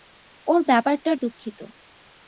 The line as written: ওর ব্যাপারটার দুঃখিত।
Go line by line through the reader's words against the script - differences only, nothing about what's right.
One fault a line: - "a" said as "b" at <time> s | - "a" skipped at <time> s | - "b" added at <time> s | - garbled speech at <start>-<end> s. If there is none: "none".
none